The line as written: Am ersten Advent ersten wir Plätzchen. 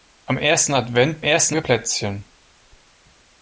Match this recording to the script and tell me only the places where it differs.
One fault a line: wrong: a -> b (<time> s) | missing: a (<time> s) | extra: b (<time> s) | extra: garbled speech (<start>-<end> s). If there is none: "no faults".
no faults